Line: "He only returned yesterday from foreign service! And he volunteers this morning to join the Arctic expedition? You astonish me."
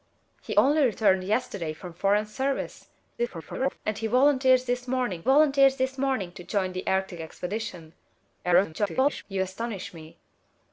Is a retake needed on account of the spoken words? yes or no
yes